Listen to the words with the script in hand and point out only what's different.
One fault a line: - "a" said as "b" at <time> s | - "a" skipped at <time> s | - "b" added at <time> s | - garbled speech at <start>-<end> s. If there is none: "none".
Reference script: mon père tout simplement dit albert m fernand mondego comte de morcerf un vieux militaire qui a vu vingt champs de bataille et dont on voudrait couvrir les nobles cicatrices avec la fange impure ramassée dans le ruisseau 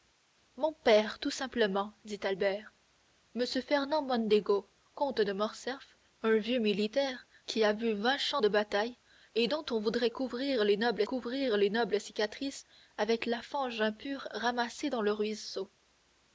- "couvrir les nobles" added at 11.0 s